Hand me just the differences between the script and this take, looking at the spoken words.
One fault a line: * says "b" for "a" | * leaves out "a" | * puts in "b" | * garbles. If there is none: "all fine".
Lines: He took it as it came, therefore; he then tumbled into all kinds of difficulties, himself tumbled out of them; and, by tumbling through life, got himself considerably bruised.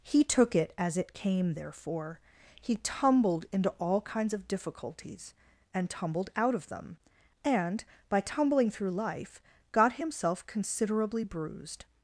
* leaves out "then"
* says "and" for "himself"